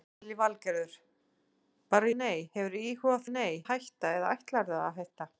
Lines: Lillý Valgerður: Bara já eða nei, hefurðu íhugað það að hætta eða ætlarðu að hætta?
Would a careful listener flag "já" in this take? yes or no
yes